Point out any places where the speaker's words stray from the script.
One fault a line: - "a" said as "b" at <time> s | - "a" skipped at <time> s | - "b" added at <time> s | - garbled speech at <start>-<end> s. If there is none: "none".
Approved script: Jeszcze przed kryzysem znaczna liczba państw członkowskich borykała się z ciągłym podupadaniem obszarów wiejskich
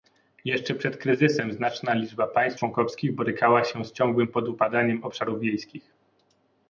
none